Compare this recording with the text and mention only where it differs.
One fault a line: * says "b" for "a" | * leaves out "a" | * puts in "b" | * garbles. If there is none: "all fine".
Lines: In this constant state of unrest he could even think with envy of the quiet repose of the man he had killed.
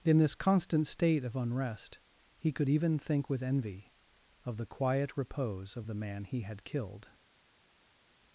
all fine